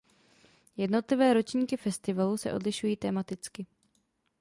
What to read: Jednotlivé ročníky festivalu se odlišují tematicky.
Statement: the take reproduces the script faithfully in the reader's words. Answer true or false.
true